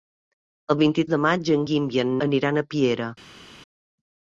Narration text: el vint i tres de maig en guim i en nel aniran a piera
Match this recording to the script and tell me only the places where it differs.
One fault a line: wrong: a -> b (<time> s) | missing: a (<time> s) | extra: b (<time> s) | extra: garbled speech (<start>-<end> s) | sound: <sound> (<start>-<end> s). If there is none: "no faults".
missing: tres (1.0 s)
missing: nel (2.1 s)